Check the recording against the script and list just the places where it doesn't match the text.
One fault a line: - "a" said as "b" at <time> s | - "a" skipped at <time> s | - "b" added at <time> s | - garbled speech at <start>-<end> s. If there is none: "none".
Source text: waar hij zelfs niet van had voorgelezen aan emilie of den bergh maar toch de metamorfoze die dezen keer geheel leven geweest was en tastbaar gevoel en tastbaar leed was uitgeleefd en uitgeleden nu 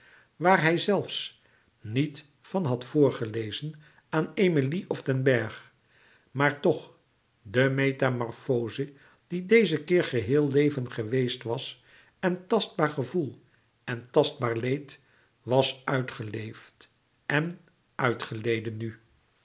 none